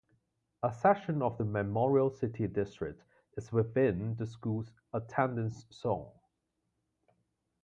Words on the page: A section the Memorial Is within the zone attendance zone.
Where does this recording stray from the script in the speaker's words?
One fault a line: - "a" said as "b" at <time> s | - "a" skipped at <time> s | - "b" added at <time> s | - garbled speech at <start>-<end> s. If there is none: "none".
- "of" added at 1.2 s
- "City district" added at 2.1 s
- "zone" said as "school's" at 4.2 s